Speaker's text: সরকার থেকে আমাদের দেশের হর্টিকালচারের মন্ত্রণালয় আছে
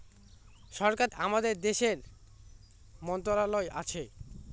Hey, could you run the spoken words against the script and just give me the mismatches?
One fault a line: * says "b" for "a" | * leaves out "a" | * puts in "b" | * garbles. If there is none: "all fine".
* leaves out "থেকে"
* leaves out "হর্টিকালচারের"